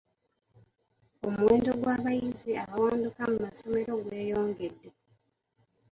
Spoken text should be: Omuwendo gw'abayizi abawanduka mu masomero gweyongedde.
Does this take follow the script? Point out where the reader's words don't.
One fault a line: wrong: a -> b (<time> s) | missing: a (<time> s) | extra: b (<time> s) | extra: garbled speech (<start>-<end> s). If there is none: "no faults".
no faults